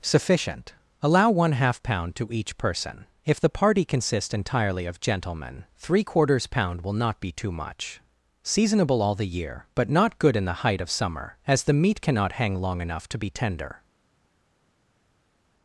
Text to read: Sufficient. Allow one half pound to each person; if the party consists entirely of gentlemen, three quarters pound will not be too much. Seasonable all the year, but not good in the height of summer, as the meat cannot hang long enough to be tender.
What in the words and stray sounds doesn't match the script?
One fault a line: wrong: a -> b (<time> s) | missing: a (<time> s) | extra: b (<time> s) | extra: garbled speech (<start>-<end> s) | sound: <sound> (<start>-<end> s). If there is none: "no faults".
no faults